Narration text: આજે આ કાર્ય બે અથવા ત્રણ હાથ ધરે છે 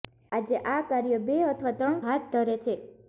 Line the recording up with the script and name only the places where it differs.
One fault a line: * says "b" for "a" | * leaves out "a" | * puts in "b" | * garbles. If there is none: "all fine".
all fine